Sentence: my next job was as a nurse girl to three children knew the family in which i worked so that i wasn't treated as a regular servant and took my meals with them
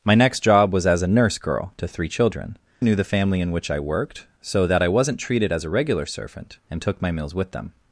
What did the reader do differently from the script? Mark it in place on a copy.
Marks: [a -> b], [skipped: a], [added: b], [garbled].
my next job was as a nurse girl to three children knew the family in which i worked so that i wasn't treated as a regular servant and took my meals with them